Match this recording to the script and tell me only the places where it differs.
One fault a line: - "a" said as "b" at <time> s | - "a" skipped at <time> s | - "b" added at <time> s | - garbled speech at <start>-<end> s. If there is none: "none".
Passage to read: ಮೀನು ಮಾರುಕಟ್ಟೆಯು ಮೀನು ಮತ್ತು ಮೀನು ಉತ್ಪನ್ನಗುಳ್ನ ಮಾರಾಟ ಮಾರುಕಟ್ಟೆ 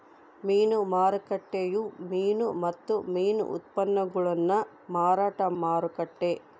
none